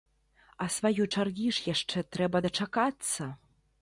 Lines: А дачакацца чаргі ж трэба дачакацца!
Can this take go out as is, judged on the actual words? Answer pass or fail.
fail